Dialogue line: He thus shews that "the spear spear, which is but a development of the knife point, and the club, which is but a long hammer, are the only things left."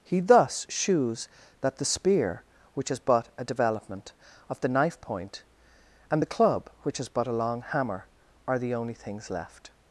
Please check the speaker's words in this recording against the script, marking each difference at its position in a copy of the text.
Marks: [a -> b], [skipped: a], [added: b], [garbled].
He thus shews that "the spear [skipped: spear,] which is but a development of the knife point, and the club, which is but a long hammer, are the only things left."